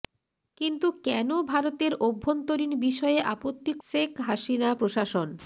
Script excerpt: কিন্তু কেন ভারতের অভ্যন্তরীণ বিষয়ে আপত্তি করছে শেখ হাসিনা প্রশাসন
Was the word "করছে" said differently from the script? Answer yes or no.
yes